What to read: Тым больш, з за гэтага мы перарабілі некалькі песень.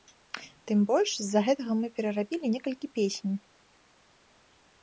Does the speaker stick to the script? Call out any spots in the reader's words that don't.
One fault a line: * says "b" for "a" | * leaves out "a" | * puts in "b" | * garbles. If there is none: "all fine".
all fine